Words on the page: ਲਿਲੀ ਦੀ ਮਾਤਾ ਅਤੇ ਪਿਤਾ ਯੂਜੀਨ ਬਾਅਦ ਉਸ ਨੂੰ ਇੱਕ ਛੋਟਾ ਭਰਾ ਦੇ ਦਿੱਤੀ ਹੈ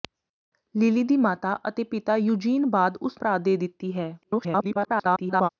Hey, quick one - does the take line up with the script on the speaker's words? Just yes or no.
no